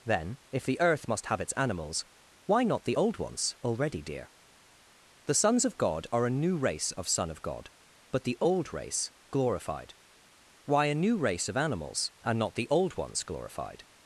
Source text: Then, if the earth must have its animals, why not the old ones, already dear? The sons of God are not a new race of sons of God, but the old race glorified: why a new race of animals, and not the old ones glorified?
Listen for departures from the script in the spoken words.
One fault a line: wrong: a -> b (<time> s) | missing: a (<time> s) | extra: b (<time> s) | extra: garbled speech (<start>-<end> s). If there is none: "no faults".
missing: not (6.3 s)
wrong: sons -> son (7.1 s)